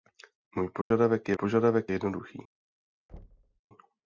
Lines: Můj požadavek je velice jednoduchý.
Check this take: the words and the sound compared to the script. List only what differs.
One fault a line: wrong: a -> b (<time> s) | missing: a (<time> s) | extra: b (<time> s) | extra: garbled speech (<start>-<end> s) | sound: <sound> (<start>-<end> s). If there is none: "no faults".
sound: dropout (0.8-0.9 s)
wrong: velice -> požadavek (1.3 s)
sound: thud (3.1-3.6 s)